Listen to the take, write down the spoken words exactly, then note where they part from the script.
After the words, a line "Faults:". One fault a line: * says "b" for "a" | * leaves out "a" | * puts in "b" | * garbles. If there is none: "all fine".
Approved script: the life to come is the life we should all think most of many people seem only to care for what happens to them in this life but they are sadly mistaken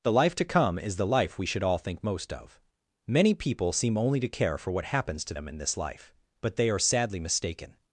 the life to come is the life we should all think most of many people seem only to care for what happens to them in this life but they are sadly mistaken
Faults:
all fine